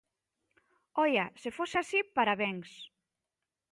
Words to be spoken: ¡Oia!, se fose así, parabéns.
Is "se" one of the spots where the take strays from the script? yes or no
no